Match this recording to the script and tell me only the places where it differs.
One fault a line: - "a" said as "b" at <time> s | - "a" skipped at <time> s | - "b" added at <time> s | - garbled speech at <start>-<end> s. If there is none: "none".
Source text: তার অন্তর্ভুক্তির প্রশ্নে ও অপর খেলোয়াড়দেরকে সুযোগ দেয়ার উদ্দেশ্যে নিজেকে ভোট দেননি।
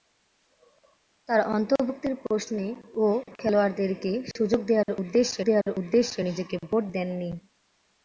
- "অপর" skipped at 3.0 s
- "দেয়ার উদ্দেশ্যে" added at 5.4 s